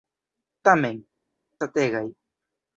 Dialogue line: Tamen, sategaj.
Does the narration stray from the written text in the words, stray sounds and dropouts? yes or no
no